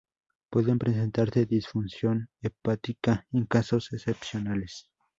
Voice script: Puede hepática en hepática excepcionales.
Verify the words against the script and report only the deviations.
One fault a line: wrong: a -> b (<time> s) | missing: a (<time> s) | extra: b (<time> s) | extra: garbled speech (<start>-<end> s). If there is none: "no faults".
extra: presentarse disfunción (0.8 s)
wrong: hepática -> casos (3.5 s)